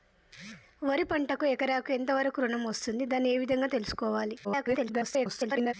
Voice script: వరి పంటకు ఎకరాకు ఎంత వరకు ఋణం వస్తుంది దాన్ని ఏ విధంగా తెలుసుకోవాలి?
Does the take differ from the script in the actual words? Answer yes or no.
yes